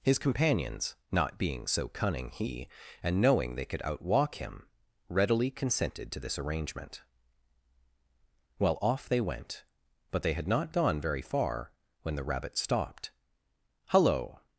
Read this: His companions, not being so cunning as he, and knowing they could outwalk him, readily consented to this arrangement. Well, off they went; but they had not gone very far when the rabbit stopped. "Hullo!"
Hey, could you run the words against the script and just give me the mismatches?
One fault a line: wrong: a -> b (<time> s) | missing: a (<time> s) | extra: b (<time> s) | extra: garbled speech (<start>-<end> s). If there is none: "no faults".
missing: as (2.3 s)